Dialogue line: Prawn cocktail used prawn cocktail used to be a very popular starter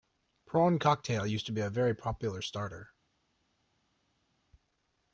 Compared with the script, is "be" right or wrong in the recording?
right